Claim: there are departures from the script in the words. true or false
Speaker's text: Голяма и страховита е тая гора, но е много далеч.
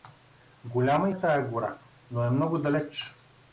true